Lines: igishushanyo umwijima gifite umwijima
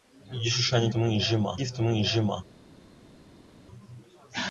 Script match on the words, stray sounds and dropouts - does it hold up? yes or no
yes